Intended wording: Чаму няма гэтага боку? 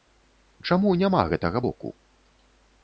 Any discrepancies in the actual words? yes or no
no